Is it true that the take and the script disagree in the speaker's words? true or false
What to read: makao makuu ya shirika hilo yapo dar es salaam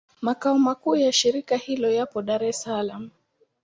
false